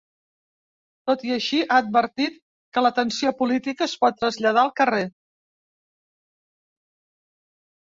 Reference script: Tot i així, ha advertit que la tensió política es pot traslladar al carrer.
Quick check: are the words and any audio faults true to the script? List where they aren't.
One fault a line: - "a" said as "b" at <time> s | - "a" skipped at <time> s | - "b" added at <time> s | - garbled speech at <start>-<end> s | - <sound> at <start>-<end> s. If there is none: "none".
none